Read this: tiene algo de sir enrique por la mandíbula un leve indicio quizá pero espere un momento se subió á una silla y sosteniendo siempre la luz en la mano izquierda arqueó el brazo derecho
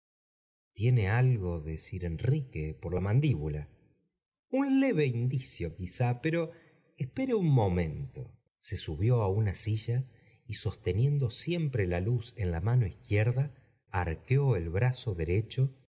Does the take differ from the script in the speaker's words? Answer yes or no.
no